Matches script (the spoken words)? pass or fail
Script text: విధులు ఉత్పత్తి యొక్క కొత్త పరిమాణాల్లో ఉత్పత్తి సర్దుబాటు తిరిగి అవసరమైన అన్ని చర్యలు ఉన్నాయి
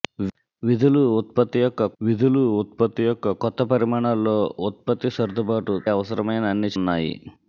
fail